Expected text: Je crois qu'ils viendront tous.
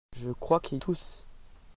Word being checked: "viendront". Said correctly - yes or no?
no